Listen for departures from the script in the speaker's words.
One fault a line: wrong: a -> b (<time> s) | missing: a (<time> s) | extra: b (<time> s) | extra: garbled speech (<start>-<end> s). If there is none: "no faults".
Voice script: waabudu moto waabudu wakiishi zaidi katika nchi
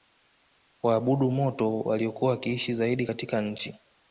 wrong: waabudu -> waliokuwa (1.8 s)